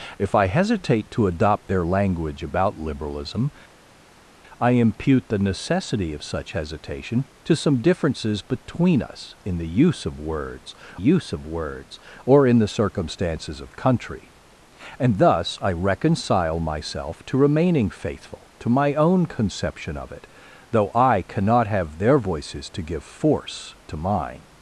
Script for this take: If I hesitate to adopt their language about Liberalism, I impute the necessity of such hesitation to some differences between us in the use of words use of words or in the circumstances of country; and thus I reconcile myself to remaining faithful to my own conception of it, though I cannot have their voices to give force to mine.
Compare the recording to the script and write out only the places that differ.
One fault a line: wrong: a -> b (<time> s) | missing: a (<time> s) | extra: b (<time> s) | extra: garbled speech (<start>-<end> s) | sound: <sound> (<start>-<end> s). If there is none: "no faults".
no faults